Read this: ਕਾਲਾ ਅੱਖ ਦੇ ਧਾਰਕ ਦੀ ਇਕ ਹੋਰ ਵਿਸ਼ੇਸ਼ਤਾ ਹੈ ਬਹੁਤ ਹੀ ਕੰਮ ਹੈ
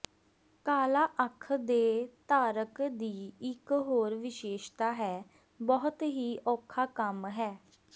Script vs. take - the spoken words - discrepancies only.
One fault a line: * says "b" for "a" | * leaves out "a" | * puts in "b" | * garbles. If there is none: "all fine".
* puts in "ਔਖਾ"